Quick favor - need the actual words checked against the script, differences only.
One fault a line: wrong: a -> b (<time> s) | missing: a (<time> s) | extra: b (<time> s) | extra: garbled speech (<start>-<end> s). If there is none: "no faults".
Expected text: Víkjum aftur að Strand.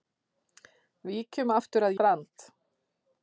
no faults